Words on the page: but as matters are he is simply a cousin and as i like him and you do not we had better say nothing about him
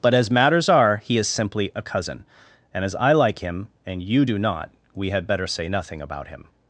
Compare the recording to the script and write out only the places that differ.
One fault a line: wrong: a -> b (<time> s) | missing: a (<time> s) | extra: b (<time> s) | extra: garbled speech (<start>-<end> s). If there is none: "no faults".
no faults